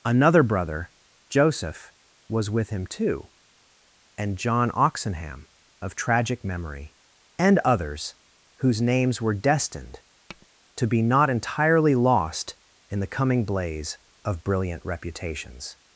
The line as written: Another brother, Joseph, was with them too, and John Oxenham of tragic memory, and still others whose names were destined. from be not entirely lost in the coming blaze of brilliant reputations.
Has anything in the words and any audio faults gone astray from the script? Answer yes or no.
yes